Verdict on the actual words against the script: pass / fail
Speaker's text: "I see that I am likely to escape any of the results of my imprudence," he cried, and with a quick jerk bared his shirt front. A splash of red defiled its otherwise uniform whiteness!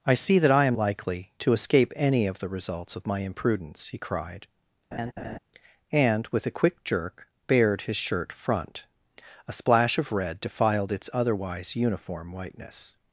pass